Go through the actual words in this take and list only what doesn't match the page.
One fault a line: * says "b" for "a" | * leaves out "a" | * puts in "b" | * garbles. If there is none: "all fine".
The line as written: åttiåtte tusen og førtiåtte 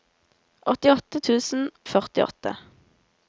all fine